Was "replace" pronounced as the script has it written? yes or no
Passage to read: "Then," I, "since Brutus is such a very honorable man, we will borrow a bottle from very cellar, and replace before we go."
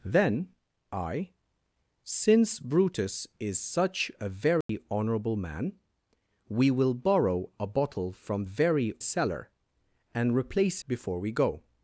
yes